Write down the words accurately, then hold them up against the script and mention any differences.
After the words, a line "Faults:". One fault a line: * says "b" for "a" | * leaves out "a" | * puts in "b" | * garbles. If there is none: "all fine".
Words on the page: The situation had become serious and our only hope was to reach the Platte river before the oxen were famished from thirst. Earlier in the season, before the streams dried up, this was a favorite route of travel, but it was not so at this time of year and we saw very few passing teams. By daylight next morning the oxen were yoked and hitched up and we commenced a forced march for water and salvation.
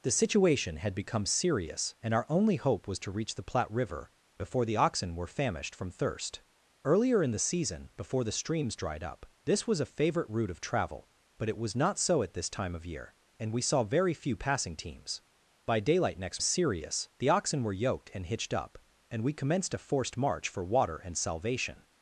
The situation had become serious and our only hope was to reach the Platte river before the oxen were famished from thirst. Earlier in the season, before the streams dried up, this was a favorite route of travel, but it was not so at this time of year and we saw very few passing teams. By daylight next serious the oxen were yoked and hitched up and we commenced a forced march for water and salvation.
Faults:
* says "serious" for "morning"